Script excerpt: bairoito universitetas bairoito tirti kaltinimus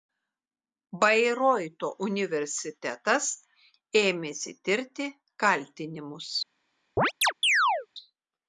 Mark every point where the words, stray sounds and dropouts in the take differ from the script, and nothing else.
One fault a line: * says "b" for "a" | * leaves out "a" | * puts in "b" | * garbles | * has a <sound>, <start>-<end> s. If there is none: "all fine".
* says "ėmėsi" for "bairoito"
* has a chirp, 7.0-7.9 s